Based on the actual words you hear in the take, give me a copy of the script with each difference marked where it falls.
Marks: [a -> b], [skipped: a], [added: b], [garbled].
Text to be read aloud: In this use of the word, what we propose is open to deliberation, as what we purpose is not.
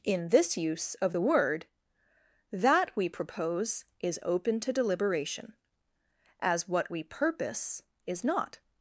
In this use of the word, [what -> that] we propose is open to deliberation, as what we purpose is not.